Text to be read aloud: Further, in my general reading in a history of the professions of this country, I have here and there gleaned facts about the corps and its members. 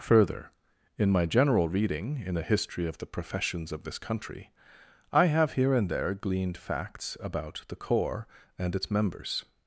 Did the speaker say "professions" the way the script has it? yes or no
yes